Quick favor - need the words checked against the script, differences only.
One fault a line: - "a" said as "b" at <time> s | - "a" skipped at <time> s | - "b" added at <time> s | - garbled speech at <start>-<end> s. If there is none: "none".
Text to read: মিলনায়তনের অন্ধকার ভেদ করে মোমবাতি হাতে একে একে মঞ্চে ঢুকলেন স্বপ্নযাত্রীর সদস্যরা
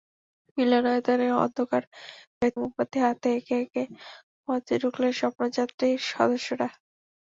- "করে" skipped at 2.5 s